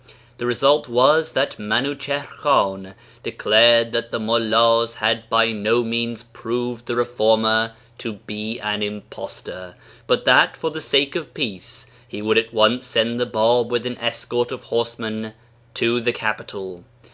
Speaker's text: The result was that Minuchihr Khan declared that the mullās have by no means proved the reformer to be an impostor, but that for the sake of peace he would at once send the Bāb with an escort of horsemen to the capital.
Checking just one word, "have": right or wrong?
wrong